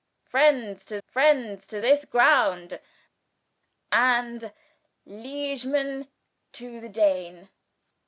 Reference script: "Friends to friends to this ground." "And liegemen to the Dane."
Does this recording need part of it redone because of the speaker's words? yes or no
no